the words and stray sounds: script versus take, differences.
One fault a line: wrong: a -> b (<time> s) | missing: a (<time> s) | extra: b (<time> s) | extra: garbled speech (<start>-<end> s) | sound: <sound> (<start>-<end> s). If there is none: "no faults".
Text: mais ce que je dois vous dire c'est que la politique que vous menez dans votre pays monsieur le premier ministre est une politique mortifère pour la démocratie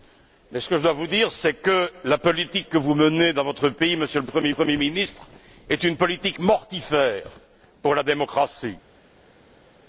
extra: premier (4.5 s)